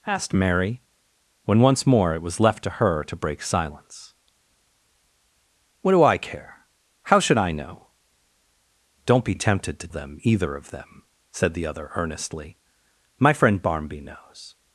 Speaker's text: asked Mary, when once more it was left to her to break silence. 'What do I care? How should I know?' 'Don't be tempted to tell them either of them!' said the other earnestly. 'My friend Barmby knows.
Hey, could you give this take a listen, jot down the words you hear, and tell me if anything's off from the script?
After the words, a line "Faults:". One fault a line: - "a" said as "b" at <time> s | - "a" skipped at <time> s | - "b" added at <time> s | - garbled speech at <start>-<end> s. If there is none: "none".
asked Mary, when once more it was left to her to break silence. 'What do I care? How should I know?' 'Don't be tempted to them either of them!' said the other earnestly. 'My friend Barmby knows.
Faults:
- "tell" skipped at 9.9 s